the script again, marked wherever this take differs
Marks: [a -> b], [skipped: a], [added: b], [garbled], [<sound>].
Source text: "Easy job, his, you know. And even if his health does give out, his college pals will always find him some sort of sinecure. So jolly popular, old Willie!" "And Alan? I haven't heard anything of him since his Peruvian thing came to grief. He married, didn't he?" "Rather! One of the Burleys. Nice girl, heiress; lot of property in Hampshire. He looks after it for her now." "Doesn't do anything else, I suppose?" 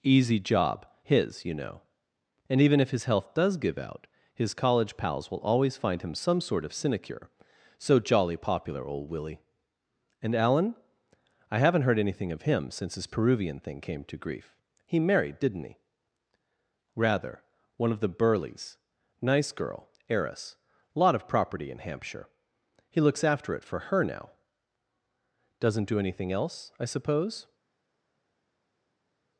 "Easy job, his, you know. And even if his health does give out, his college pals will always find him some sort of sinecure. So jolly popular, old Willie!" "And Alan? I haven't heard anything of him since his Peruvian thing came to grief. He married, didn't he?" "Rather! One of the Burleys. Nice girl, heiress; lot of property in Hampshire. He looks after it for her now." "Doesn't do anything else, I suppose?"